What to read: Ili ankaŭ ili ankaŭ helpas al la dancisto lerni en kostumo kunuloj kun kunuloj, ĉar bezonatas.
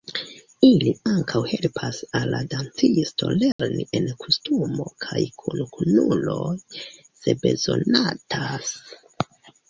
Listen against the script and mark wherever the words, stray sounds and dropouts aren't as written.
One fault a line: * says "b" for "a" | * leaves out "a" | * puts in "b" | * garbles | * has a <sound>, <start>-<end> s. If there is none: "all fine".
* leaves out "ili ankaŭ"
* has a dropout, 3.5-3.6 s
* says "kaj" for "kunuloj"
* says "se" for "ĉar"